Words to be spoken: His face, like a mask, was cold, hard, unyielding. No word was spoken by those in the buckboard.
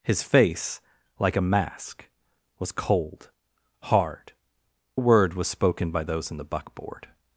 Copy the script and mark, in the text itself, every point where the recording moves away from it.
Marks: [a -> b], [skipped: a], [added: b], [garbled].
His face, like a mask, was cold, hard, [skipped: unyielding. No] word was spoken by those in the buckboard.